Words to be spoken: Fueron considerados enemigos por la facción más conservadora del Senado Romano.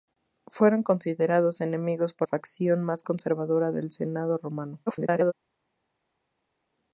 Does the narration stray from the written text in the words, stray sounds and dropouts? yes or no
yes